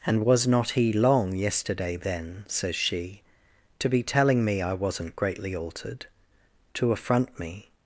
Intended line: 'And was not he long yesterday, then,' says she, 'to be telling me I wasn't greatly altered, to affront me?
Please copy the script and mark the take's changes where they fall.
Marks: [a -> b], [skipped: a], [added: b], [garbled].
'And was not he long yesterday, then,' says she, 'to be telling me I wasn't greatly altered, to affront me?